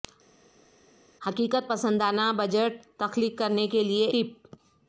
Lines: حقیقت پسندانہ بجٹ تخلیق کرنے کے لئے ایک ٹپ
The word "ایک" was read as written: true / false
false